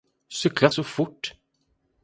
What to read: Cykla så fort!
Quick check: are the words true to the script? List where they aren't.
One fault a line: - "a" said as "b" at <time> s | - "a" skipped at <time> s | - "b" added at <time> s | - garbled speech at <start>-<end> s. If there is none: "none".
none